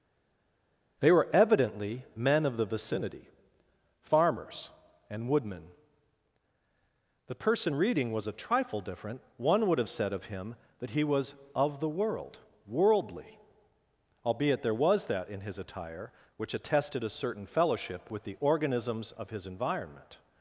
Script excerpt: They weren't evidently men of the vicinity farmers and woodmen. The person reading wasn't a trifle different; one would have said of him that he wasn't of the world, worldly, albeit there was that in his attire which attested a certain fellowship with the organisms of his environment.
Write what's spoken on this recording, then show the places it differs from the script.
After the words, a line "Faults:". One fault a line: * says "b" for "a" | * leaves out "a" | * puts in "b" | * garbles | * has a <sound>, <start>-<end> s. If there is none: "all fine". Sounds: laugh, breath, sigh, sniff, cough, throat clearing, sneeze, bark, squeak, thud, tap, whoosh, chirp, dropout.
They were evidently men of the vicinity farmers and woodmen. The person reading was a trifle different; one would have said of him that he was of the world, worldly, albeit there was that in his attire which attested a certain fellowship with the organisms of his environment.
Faults:
* says "were" for "weren't"
* says "was" for "wasn't"
* says "was" for "wasn't"